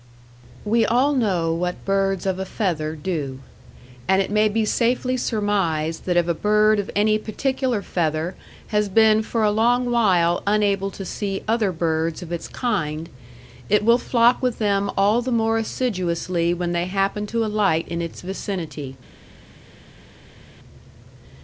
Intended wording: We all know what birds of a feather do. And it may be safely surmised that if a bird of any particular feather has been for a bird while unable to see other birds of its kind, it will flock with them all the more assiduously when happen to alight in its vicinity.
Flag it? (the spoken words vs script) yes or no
yes